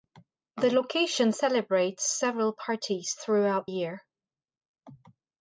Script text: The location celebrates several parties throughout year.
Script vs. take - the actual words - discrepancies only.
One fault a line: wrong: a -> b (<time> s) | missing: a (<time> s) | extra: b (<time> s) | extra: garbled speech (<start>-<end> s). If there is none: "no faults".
no faults